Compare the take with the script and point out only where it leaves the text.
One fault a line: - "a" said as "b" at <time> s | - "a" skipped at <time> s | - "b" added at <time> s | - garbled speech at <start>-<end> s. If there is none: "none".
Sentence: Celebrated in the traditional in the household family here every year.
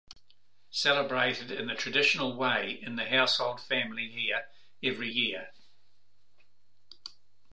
- "way" added at 2.4 s